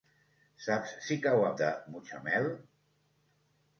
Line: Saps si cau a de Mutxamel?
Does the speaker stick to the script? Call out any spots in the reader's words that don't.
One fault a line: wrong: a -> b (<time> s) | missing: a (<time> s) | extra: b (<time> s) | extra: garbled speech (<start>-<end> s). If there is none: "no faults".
no faults